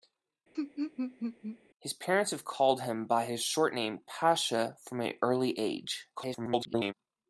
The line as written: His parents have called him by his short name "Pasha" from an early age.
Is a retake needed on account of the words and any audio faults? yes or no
yes